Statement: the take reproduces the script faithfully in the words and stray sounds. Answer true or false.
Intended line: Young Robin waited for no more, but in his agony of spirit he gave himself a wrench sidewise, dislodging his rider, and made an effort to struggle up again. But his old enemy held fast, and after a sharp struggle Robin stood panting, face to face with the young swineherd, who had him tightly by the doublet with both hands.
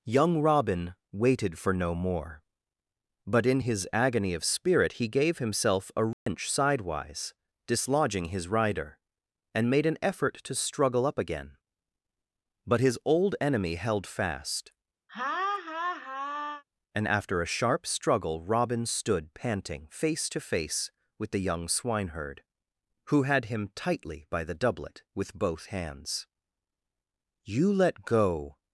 false